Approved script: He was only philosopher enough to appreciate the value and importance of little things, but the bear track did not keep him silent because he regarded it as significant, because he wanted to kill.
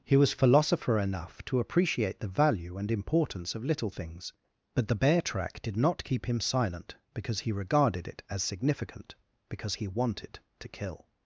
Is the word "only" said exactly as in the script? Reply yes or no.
no